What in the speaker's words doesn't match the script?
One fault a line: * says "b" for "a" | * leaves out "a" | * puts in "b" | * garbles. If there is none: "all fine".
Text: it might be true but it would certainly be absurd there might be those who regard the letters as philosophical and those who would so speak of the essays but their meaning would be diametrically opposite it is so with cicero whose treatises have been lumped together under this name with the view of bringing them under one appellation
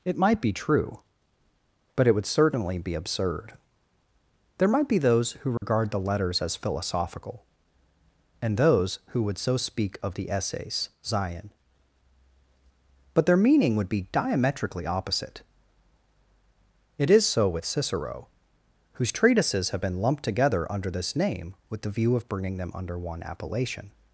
* puts in "zion"